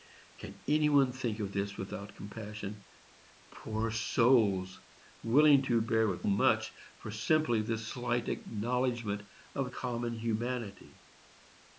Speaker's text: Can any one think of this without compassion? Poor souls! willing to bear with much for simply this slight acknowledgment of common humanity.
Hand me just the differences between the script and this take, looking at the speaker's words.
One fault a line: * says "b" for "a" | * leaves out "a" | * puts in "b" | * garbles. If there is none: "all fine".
all fine